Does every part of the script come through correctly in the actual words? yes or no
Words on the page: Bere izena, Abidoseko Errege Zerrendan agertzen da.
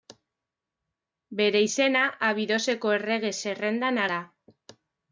no